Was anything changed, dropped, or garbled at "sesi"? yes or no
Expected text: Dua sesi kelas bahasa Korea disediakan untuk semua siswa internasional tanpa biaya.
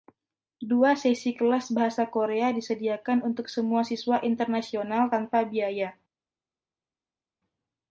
no